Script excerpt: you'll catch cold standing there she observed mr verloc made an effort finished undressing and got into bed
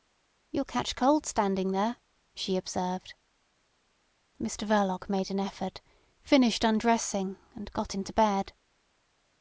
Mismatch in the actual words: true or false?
false